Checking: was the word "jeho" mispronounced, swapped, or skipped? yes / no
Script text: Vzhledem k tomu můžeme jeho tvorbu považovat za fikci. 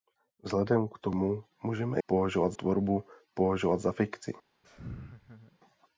yes